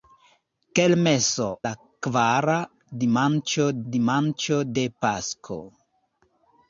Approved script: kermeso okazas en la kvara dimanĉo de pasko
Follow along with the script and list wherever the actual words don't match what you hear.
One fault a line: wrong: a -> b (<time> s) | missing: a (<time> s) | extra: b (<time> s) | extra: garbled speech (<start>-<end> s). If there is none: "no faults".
missing: okazas en (1.5 s)
extra: dimanĉo (3.9 s)